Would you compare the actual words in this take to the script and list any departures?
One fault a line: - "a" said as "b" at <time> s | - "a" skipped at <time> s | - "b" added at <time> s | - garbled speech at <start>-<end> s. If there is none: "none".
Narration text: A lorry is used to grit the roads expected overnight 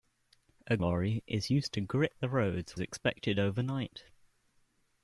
none